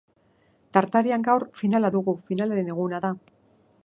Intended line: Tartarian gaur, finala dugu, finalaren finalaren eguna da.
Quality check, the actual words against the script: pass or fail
fail